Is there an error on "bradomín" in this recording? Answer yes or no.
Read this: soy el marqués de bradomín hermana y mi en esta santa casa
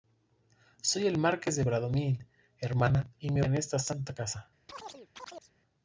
no